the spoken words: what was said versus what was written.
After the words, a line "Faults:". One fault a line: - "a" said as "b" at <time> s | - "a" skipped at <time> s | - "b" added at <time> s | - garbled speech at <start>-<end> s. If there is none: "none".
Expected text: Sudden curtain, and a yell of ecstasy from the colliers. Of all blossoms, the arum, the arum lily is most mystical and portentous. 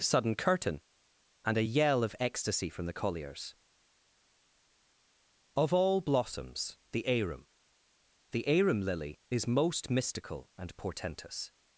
Sudden curtain, and a yell of ecstasy from the colliers. Of all blossoms, the arum, the arum lily is most mystical and portentous.
Faults:
none